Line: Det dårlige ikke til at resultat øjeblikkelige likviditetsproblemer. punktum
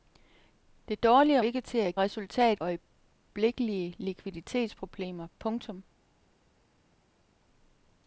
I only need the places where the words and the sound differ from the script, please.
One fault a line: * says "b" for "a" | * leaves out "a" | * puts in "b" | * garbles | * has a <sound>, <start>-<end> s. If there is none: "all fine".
all fine